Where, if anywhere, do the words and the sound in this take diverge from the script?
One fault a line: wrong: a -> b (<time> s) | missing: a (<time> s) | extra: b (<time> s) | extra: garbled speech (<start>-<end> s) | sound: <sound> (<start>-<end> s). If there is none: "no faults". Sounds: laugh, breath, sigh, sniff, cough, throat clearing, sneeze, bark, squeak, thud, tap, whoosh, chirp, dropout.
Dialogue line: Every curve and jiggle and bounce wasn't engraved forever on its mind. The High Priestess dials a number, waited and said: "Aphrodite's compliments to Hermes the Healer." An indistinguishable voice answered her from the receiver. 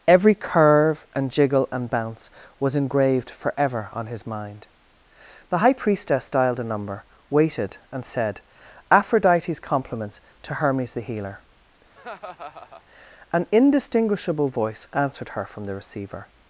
wrong: wasn't -> was (2.6 s)
wrong: its -> his (4.1 s)
wrong: dials -> dialed (6.3 s)
sound: laugh (11.9-12.8 s)